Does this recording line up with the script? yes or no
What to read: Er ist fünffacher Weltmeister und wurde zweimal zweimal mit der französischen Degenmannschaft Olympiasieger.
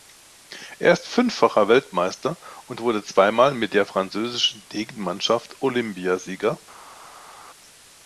no